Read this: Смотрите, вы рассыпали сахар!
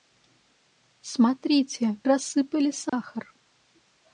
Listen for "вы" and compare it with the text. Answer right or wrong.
wrong